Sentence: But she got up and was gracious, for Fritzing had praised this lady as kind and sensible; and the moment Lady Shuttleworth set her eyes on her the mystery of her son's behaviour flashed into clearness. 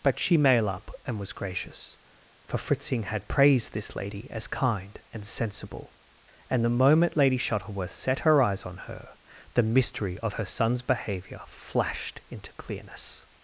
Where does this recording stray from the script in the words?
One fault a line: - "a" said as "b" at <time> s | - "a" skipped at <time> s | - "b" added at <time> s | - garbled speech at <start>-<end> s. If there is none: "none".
- "got" said as "mail" at 0.4 s